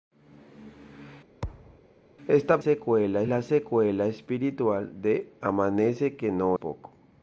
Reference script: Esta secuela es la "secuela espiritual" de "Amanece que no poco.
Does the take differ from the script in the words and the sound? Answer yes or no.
yes